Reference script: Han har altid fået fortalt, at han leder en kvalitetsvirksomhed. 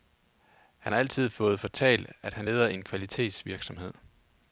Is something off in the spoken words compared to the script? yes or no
no